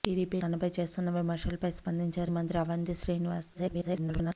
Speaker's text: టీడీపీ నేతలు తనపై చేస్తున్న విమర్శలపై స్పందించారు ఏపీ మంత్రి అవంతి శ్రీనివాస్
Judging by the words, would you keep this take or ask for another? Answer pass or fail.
fail